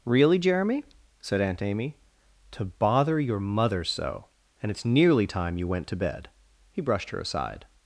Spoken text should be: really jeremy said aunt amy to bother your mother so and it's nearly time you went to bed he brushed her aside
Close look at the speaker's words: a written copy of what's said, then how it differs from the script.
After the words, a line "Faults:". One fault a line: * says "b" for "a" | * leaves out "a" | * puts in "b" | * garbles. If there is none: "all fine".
really jeremy said aunt amy to bother your mother so and it's nearly time you went to bed he brushed her aside
Faults:
all fine